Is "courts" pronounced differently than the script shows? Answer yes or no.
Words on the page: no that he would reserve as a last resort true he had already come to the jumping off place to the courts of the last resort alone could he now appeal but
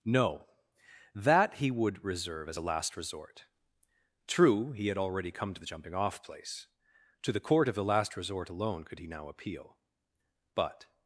yes